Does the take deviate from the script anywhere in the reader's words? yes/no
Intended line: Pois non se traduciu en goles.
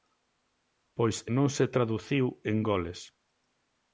no